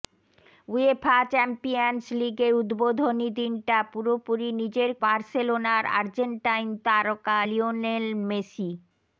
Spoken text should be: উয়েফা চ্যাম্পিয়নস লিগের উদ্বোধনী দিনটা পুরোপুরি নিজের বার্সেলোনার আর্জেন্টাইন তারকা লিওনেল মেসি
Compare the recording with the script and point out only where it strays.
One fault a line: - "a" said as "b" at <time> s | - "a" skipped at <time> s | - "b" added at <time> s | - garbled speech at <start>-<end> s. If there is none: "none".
none